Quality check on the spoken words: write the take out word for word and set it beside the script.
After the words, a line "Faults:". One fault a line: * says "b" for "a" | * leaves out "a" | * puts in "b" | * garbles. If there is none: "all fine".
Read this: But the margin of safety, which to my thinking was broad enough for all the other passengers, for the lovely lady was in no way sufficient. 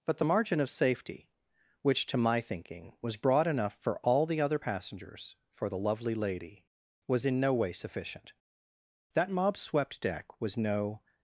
But the margin of safety, which to my thinking was broad enough for all the other passengers, for the lovely lady was in no way sufficient. That mob swept deck was no
Faults:
* puts in "That mob swept deck was no"